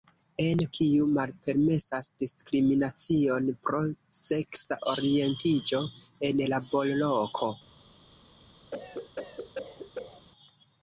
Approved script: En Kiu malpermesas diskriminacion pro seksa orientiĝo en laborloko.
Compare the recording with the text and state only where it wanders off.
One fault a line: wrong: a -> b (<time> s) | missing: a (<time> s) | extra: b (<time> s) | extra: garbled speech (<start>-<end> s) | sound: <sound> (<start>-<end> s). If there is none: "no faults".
sound: cough (8.7-10.3 s)